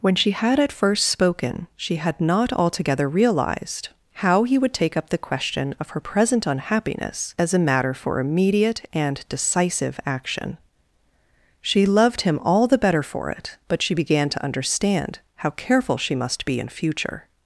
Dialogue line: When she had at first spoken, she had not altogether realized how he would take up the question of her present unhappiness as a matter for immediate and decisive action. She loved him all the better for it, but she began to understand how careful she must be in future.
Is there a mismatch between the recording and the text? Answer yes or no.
no